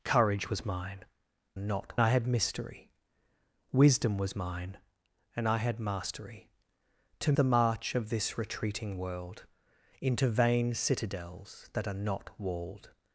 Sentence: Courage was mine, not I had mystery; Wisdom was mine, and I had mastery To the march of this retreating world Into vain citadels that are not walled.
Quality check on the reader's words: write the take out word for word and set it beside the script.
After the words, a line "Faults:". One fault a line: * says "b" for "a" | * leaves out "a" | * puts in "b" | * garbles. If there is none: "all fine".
Courage was mine, not I had mystery; Wisdom was mine, and I had mastery To the march of this retreating world Into vain citadels that are not walled.
Faults:
all fine